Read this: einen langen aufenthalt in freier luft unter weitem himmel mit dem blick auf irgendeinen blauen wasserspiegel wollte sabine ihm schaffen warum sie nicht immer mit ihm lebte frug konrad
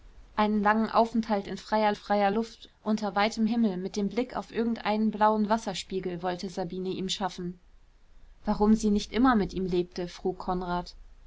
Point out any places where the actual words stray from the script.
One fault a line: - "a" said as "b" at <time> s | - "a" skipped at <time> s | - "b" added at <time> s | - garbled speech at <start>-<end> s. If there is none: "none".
- "freier" added at 1.9 s